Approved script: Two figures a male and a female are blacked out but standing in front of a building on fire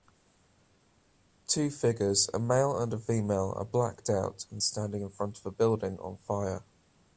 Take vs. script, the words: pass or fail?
fail